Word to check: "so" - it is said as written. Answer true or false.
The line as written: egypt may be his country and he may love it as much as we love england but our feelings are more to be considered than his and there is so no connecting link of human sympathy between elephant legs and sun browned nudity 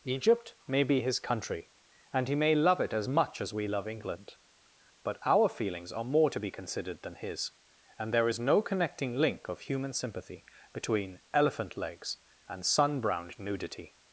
false